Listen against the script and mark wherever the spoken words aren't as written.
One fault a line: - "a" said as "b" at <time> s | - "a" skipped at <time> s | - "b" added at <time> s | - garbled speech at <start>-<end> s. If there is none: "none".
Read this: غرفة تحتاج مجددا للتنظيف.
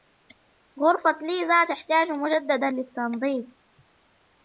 - "ليزا" added at 1.2 s